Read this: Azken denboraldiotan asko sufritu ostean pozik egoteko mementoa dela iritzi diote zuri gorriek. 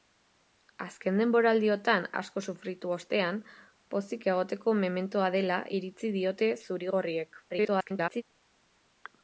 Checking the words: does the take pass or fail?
fail